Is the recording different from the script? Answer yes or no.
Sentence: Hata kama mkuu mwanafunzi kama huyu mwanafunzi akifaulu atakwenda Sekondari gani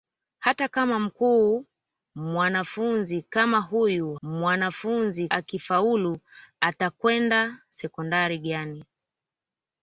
no